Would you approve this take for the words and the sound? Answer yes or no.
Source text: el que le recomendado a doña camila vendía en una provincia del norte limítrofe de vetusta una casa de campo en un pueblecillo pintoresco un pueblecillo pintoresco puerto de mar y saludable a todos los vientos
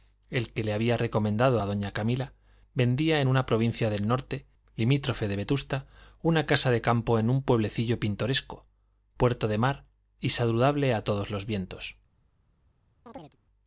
no